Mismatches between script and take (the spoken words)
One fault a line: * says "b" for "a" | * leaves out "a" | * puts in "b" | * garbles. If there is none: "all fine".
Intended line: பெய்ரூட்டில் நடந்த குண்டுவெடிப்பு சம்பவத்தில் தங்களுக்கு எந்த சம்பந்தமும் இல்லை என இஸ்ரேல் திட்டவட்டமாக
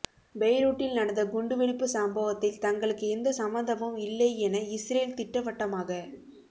all fine